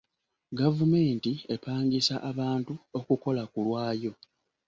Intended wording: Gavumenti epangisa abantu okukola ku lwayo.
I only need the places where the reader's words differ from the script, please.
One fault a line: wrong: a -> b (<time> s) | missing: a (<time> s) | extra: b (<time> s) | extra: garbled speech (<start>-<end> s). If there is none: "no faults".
no faults